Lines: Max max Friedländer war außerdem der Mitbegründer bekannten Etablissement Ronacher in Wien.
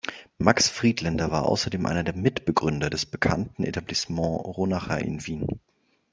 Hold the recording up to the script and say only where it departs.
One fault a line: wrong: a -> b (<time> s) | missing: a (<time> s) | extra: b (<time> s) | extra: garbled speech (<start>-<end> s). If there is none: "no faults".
missing: max (0.7 s)
extra: einer (1.9 s)
extra: des (2.9 s)